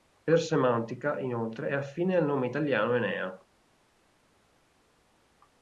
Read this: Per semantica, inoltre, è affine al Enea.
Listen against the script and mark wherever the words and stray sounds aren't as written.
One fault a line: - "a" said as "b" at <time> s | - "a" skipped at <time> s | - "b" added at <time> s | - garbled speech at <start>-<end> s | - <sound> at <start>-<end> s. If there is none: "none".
- "nome italiano" added at 2.2 s